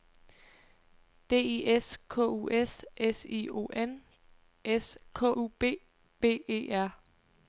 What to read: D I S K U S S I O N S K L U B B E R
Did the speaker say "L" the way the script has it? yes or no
no